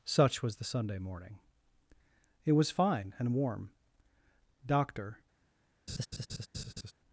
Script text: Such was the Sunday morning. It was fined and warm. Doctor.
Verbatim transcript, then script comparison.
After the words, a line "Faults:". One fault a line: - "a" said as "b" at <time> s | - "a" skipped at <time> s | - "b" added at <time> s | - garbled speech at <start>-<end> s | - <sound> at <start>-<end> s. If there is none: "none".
Such was the Sunday morning. It was fine and warm. Doctor.
Faults:
- "fined" said as "fine" at 2.7 s
- laugh at 5.9-6.9 s